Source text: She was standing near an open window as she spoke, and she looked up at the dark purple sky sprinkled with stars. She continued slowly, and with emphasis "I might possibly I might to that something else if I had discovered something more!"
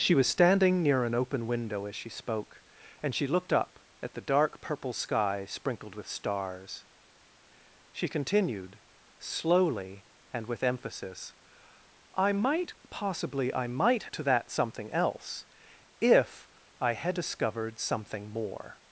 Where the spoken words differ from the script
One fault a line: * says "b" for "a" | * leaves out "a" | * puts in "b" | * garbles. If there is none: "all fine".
all fine